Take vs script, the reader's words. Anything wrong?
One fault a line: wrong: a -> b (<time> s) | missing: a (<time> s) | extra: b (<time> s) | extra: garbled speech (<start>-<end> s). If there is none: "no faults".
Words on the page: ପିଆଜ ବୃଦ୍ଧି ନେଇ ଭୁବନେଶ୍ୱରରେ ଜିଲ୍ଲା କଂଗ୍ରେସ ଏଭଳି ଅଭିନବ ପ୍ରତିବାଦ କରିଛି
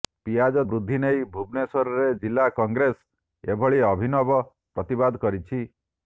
no faults